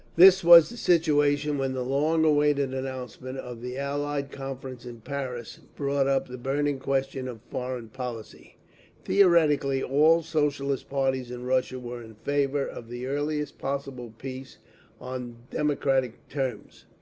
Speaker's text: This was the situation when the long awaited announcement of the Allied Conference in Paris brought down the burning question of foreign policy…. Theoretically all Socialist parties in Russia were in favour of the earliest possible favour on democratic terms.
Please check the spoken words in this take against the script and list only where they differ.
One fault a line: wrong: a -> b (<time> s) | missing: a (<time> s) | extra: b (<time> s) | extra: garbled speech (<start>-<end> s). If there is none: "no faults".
wrong: down -> up (6.1 s)
wrong: favour -> peace (14.2 s)